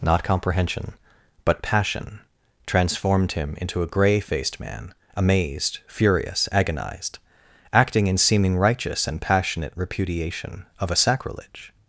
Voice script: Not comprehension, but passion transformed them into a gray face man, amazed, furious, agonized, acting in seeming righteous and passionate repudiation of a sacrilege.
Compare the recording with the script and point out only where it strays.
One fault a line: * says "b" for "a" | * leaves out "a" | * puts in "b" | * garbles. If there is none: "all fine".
* says "him" for "them"
* says "faced" for "face"